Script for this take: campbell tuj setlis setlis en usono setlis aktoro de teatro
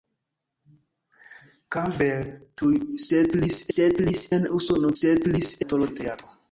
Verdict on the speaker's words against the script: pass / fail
pass